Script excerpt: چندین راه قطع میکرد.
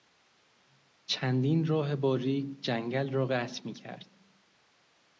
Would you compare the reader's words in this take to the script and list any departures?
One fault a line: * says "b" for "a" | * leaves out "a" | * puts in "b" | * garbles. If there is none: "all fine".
* puts in "باریک جنگل را"